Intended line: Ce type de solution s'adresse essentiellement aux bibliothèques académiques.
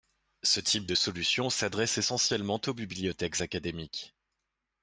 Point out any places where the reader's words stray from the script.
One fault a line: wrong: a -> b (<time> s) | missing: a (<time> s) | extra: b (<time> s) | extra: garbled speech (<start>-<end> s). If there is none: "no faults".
no faults